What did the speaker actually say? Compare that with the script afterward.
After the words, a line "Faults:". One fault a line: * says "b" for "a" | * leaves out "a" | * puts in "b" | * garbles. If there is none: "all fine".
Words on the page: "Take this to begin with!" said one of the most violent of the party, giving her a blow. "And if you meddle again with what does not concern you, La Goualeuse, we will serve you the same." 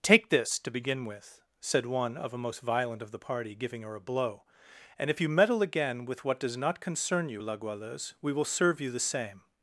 "Take this to begin with!" said one of a most violent of the party, giving her a blow. "And if you meddle again with what does not concern you, La Goualeuse, we will serve you the same."
Faults:
* says "a" for "the"